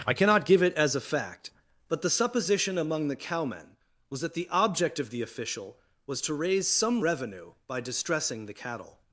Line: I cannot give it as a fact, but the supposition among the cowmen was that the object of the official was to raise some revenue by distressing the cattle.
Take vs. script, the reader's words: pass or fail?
pass